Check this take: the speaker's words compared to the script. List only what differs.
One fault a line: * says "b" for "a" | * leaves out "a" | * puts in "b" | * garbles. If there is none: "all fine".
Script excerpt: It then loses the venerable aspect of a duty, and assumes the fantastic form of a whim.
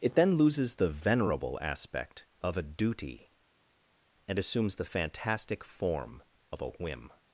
all fine